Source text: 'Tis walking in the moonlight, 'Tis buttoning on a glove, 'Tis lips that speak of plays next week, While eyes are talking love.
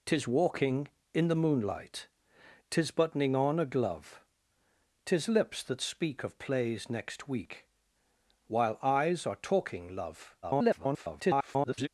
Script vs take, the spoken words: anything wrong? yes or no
yes